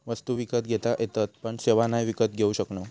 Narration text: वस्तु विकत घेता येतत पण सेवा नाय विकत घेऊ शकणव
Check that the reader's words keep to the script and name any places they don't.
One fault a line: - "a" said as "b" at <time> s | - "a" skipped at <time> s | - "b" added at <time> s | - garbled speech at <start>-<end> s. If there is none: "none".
none